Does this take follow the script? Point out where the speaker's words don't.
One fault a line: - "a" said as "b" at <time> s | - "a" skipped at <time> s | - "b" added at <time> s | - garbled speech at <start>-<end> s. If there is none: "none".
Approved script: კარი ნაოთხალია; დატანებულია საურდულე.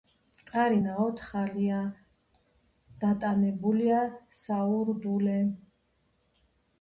none